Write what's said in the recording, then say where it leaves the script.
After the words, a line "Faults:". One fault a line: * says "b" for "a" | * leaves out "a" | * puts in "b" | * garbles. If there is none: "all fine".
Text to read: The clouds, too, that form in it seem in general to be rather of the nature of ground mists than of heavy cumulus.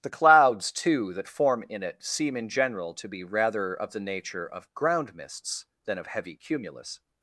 The clouds, too, that form in it seem in general to be rather of the nature of ground mists than of heavy cumulus.
Faults:
all fine